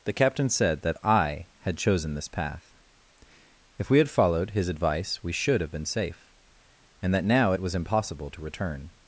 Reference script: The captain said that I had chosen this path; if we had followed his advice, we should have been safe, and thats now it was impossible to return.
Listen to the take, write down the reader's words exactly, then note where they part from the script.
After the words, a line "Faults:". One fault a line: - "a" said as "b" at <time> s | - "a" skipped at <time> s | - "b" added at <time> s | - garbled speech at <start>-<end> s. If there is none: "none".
The captain said that I had chosen this path; if we had followed his advice, we should have been safe, and that now it was impossible to return.
Faults:
- "thats" said as "that" at 7.1 s